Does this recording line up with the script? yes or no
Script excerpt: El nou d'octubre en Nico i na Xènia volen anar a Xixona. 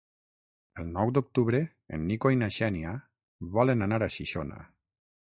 yes